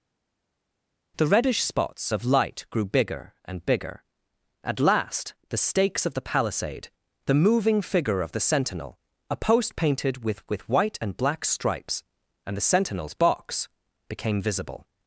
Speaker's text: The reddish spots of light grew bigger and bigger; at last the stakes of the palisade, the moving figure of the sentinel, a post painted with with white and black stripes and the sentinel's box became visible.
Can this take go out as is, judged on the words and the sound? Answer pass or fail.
pass